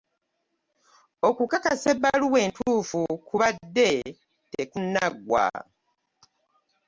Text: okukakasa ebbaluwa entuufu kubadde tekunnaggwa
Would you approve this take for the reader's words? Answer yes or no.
yes